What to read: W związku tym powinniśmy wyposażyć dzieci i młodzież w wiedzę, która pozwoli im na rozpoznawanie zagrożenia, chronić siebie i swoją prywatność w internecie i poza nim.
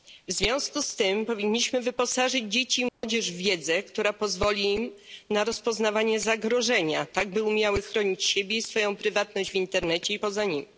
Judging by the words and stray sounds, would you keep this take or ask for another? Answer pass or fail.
fail